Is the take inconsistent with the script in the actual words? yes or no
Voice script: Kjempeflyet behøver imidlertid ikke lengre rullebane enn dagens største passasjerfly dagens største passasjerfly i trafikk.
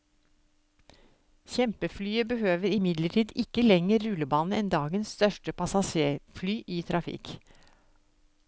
yes